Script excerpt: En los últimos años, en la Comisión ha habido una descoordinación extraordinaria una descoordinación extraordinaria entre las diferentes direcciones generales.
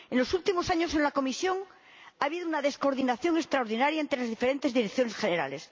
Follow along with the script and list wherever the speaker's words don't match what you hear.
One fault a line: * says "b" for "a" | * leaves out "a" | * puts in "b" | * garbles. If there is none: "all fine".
* leaves out "una descoordinación extraordinaria"